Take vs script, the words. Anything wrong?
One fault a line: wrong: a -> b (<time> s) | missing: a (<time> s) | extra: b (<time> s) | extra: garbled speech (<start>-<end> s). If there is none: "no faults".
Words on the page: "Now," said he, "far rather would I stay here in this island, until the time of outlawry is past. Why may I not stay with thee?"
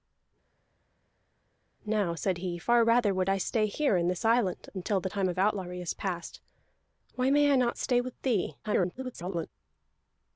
extra: garbled speech (8.6-9.5 s)